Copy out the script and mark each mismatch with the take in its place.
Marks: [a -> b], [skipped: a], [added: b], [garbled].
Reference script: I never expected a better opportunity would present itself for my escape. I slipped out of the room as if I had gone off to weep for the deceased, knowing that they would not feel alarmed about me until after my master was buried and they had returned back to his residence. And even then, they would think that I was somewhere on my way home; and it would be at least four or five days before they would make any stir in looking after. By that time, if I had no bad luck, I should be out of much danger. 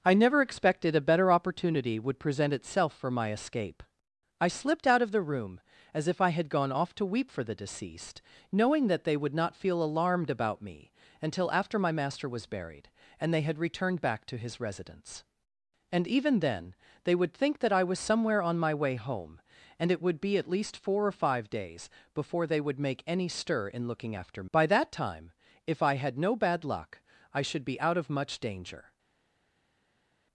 I never expected a better opportunity would present itself for my escape. I slipped out of the room as if I had gone off to weep for the deceased, knowing that they would not feel alarmed about me until after my master was buried and they had returned back to his residence. And even then, they would think that I was somewhere on my way home; and it would be at least four or five days before they would make any stir in looking after. By that time, if I had no bad luck, I should be out of much danger.